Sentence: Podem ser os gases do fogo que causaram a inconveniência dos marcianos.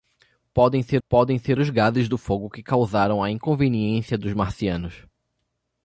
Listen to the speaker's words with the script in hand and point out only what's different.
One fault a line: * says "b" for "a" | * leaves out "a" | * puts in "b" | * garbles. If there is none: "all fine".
* puts in "podem ser"